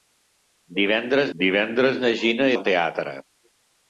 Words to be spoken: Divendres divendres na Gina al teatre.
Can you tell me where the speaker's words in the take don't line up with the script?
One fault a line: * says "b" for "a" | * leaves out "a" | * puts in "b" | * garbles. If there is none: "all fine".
all fine